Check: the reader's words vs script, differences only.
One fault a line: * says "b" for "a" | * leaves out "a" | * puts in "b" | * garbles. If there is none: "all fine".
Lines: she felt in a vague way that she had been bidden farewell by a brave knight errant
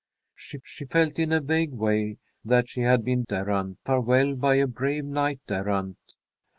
* puts in "she"
* says "errant" for "bidden"